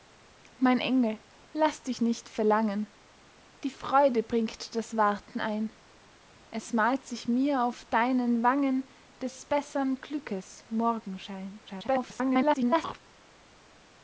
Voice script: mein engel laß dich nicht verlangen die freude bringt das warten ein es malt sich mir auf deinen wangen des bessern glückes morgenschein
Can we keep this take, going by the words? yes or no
no